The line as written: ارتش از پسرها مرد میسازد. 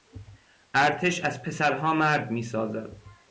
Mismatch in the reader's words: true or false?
false